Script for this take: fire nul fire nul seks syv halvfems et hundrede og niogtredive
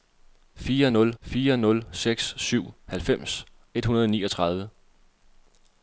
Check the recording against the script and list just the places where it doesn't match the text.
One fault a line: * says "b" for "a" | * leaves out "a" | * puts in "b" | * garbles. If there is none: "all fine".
all fine